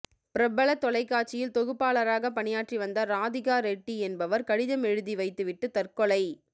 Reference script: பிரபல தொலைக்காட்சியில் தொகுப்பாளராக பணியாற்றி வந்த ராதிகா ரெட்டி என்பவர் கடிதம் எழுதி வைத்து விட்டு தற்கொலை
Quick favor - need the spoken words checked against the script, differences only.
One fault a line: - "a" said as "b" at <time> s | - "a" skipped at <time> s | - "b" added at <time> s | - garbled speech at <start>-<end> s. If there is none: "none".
none